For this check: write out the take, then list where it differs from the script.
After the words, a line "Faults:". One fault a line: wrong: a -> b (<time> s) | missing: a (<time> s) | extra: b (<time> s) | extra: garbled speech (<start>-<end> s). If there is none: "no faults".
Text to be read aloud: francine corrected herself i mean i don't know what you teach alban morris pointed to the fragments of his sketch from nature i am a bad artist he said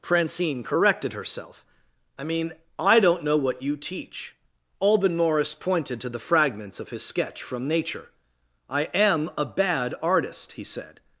francine corrected herself i mean i don't know what you teach alban morris pointed to the fragments of his sketch from nature i am a bad artist he said
Faults:
no faults